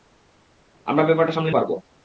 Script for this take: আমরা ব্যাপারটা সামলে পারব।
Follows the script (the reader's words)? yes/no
yes